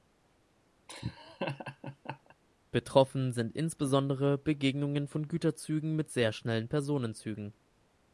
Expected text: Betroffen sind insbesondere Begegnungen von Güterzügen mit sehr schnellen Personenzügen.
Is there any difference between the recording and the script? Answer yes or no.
no